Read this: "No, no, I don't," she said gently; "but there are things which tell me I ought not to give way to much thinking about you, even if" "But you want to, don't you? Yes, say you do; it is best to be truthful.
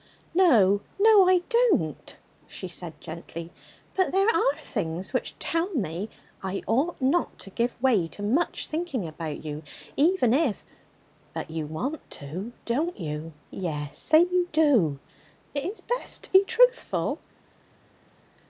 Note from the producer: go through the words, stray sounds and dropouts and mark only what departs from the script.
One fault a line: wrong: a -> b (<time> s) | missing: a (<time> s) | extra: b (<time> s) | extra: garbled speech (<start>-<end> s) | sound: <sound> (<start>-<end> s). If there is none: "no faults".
no faults